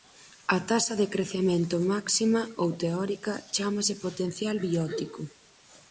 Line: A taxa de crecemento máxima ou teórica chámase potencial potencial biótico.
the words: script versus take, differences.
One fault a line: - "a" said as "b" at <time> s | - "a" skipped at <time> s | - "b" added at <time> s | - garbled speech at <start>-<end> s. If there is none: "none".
- "potencial" skipped at 4.5 s